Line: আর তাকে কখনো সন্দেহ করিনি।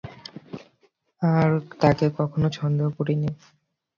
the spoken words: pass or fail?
pass